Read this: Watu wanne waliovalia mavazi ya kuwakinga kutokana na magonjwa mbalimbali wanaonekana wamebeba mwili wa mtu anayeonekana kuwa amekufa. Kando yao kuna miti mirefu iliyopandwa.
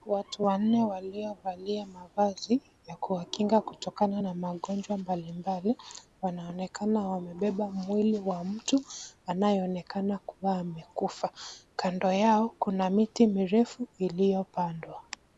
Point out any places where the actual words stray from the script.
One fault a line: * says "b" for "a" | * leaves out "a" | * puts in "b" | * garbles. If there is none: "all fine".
all fine